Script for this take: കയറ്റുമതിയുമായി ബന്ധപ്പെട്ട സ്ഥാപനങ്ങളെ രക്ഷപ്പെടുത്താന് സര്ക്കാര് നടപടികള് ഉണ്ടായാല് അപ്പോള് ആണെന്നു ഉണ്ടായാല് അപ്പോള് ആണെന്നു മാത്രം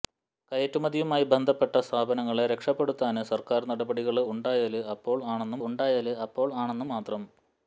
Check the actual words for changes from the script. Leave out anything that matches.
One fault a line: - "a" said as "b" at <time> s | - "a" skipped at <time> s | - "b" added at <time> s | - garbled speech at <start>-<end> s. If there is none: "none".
none